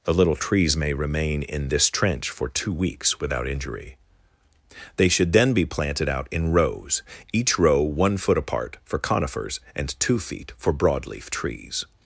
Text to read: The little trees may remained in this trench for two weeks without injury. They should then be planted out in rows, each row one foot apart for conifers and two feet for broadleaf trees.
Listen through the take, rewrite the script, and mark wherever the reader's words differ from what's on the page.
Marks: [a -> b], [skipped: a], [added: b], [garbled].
The little trees may [remained -> remain] in this trench for two weeks without injury. They should then be planted out in rows, each row one foot apart for conifers and two feet for broadleaf trees.